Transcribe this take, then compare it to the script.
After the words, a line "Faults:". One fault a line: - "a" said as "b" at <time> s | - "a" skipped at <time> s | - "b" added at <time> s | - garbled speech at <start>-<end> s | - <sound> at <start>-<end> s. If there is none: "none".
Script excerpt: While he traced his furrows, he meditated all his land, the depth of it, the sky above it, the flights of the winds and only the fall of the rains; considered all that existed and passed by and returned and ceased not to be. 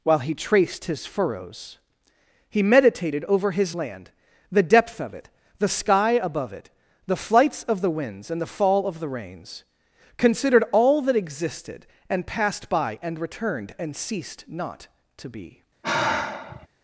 While he traced his furrows, he meditated over his land, the depth of it, the sky above it, the flights of the winds and the fall of the rains; considered all that existed and passed by and returned and ceased not to be.
Faults:
- "all" said as "over" at 3.2 s
- "only" skipped at 8.4 s
- sigh at 15.8-16.7 s